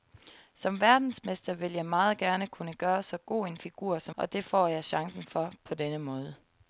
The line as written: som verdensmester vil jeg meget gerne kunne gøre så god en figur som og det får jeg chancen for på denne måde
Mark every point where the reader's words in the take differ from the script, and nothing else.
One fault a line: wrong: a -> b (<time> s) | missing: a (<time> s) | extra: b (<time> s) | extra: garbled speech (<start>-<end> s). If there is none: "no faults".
no faults